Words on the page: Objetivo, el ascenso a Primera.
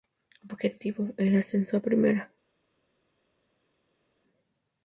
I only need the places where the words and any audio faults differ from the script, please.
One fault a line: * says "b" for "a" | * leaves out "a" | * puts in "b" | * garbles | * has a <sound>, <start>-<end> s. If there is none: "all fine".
all fine